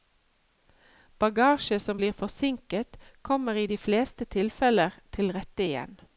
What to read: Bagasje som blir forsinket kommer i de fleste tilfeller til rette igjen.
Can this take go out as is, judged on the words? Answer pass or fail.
pass